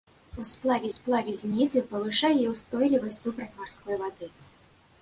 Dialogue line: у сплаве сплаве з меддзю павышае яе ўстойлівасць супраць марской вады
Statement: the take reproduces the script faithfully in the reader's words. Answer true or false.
true